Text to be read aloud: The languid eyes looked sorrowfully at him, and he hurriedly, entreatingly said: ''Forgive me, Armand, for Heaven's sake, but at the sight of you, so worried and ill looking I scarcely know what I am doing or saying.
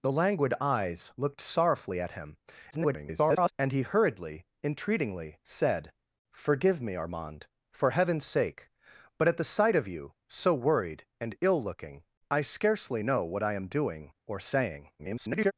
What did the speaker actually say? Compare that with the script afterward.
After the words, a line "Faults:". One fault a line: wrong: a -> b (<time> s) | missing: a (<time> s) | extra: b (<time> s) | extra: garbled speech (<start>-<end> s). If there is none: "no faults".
The languid eyes looked sorrowfully at him, [garbled] and he hurriedly, entreatingly said: ''Forgive me, Armand, for Heaven's sake, but at the sight of you, so worried and ill looking I scarcely know what I am doing or saying. [garbled]
Faults:
extra: garbled speech (2.7-3.5 s)
extra: garbled speech (15.0-15.5 s)